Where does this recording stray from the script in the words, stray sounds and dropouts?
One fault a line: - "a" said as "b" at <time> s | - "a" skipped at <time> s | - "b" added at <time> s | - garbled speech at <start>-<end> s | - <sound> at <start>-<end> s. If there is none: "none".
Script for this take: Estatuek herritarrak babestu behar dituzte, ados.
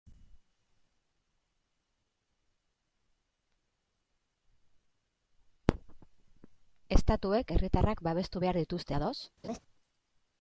- laugh at 9.4-9.6 s